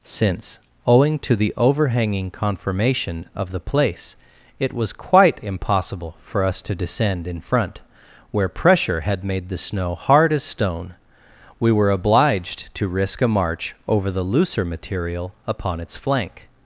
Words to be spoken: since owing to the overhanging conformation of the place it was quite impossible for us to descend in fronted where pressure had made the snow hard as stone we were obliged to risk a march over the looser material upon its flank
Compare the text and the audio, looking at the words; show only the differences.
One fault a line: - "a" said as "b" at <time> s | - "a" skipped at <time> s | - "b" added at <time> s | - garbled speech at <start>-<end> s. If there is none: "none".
- "fronted" said as "front" at 7.4 s